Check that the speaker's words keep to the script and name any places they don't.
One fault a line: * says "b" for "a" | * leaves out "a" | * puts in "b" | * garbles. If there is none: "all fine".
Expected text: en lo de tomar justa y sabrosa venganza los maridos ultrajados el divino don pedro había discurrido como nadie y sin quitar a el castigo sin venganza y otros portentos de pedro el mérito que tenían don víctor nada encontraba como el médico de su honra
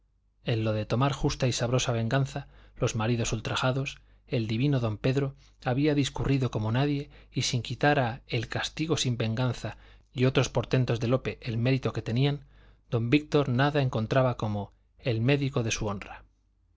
* says "lope" for "pedro"